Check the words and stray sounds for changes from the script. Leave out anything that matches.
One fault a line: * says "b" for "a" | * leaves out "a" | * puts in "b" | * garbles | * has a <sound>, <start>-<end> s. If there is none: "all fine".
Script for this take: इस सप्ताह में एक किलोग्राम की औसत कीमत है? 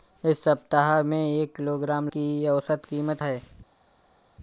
all fine